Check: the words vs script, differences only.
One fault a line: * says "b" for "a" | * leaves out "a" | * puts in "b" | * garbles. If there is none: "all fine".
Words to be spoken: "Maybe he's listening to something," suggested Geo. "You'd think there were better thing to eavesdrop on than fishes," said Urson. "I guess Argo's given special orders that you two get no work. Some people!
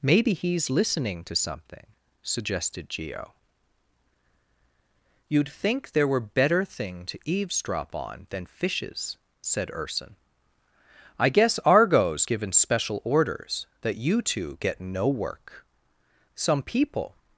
all fine